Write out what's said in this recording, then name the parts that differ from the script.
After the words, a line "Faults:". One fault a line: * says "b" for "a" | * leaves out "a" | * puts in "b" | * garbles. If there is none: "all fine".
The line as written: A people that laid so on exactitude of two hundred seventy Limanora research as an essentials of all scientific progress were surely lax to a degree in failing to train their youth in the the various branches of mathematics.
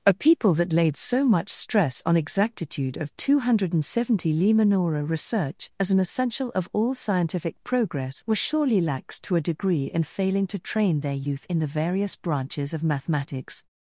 A people that laid so much stress on exactitude of two hundred seventy Limanora research as an essential of all scientific progress were surely lax to a degree in failing to train their youth in the various branches of mathematics.
Faults:
* puts in "much stress"
* says "essential" for "essentials"
* leaves out "the"